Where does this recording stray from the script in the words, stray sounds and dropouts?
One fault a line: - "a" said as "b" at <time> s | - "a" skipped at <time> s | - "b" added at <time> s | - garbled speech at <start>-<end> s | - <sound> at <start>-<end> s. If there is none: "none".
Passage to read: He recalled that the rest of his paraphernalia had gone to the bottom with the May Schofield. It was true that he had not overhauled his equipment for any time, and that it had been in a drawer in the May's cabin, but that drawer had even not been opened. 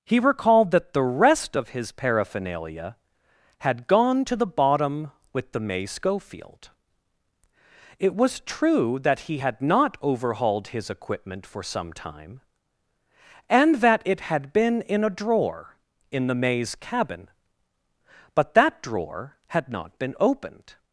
- "any" said as "some" at 11.6 s
- "even" skipped at 19.7 s